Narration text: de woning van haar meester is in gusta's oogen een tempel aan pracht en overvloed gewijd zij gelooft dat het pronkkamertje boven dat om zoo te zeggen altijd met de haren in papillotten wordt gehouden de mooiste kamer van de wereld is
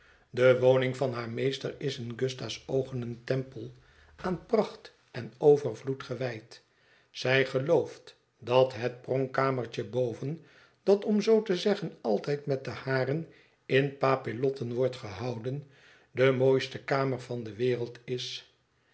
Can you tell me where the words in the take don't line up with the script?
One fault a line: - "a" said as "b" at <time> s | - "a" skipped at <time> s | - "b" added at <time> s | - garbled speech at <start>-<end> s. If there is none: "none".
none